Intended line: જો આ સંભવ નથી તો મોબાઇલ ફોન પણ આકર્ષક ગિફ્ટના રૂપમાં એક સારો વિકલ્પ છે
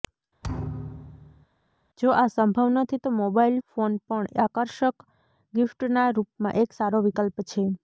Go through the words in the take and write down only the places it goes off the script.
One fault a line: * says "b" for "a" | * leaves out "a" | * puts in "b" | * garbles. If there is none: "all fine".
all fine